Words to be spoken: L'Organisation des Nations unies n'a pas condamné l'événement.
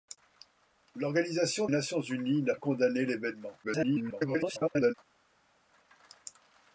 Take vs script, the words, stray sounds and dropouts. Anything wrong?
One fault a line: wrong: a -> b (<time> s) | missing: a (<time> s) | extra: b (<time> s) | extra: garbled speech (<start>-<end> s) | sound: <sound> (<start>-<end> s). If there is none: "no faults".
missing: des (1.7 s)
missing: pas (2.6 s)
extra: garbled speech (3.6-4.9 s)